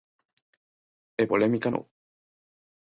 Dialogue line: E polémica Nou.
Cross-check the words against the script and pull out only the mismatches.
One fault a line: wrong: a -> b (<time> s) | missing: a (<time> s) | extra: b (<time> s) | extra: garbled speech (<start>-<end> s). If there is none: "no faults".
no faults